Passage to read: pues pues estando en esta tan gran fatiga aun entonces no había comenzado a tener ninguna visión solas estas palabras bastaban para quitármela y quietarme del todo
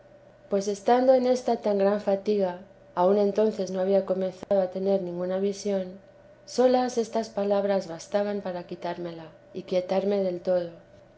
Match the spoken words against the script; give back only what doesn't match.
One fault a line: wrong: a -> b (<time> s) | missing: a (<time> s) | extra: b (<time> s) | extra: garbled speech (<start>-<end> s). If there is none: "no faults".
missing: pues (0.7 s)